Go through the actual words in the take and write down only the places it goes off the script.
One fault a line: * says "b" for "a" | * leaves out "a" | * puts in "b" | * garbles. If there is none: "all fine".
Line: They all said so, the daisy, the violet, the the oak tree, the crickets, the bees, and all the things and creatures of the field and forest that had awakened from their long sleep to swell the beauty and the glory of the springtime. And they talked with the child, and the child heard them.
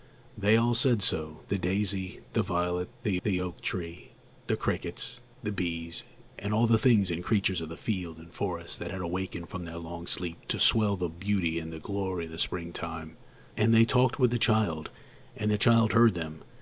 all fine